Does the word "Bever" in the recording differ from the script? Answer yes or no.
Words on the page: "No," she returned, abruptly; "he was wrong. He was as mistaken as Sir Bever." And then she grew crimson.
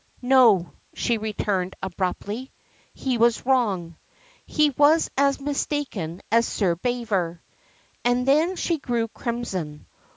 no